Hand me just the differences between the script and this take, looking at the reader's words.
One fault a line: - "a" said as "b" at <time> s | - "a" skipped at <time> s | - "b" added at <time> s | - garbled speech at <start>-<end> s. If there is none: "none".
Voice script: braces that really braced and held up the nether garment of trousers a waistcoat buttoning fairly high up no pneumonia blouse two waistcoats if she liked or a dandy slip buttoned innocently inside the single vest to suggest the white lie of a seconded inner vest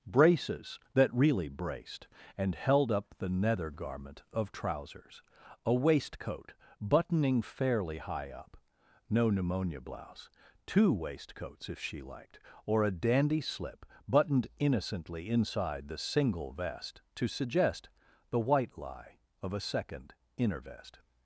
- "seconded" said as "second" at 19.6 s